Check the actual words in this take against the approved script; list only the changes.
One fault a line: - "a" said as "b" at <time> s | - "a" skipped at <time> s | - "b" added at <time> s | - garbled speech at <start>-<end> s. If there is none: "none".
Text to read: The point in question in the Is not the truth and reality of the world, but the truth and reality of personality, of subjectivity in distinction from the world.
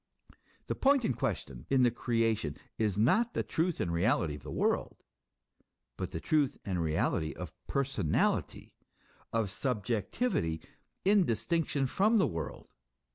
- "Creation" added at 1.9 s